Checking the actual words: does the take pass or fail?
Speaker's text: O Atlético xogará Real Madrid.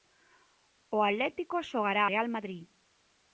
pass